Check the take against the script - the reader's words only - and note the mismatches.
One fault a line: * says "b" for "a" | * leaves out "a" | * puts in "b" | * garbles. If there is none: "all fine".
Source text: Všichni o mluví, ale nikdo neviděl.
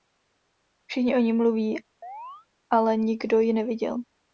* puts in "ní"
* puts in "ji"